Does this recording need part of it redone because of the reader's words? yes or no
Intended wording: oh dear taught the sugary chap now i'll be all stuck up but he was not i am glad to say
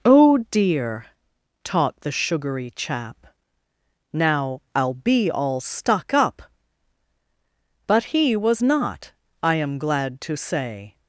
no